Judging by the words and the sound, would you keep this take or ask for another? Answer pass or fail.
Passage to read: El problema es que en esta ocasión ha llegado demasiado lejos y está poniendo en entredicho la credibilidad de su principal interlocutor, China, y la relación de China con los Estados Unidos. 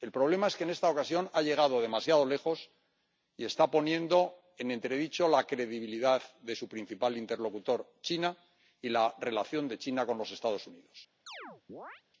fail